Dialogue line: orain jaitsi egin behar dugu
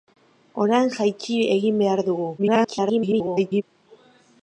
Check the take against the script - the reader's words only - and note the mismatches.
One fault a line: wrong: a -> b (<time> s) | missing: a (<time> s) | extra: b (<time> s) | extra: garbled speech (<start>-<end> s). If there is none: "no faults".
extra: garbled speech (2.4-3.6 s)